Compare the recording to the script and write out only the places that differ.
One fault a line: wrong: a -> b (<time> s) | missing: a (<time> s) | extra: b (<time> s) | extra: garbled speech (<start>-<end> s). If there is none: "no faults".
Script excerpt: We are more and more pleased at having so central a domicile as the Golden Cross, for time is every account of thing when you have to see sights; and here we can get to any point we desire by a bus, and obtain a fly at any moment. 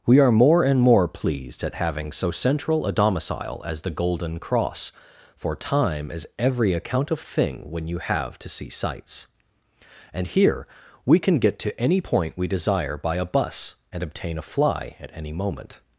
no faults